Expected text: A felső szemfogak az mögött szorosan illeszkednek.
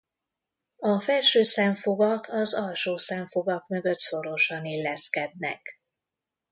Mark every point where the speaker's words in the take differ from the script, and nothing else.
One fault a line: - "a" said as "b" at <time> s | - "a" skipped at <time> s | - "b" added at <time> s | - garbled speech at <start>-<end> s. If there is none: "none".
- "alsó szemfogak" added at 2.5 s